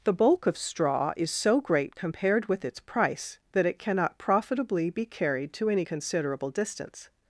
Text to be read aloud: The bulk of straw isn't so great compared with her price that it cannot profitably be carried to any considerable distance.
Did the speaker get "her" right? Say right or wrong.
wrong